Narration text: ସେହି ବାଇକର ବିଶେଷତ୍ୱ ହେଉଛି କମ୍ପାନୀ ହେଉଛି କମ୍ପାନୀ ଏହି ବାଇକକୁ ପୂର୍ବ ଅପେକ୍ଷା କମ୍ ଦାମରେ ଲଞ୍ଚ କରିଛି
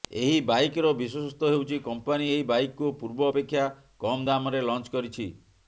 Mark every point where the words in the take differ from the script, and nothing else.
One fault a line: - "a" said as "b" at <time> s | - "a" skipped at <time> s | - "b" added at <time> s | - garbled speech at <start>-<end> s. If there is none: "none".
- "ସେହି" said as "ଏହି" at 0.2 s
- "ହେଉଛି କମ୍ପାନୀ" skipped at 2.3 s